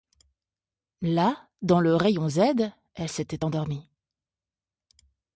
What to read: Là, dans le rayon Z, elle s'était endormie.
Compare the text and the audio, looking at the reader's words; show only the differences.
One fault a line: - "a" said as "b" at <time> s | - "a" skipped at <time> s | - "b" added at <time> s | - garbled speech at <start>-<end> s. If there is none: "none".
none